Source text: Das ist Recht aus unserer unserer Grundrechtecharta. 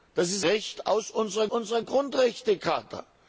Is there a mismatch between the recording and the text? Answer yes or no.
no